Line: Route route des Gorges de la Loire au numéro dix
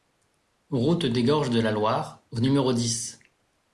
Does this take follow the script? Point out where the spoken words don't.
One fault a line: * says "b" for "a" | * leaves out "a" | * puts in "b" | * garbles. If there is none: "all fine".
* leaves out "route"